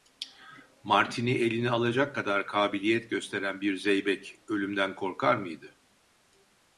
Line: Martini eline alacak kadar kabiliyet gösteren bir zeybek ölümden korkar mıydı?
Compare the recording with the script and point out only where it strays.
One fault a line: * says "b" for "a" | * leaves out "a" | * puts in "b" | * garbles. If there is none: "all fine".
all fine